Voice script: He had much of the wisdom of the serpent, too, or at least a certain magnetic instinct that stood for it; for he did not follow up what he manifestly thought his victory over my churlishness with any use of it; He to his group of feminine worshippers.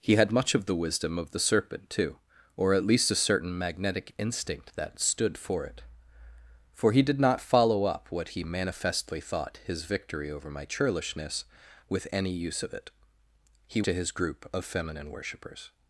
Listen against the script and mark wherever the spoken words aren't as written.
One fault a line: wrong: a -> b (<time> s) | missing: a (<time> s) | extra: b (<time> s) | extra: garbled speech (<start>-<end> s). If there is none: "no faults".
no faults